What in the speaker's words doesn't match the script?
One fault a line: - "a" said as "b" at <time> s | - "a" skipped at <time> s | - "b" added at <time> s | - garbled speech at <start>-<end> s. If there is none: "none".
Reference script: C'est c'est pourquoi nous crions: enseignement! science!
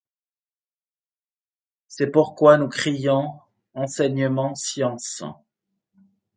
- "c'est" skipped at 2.1 s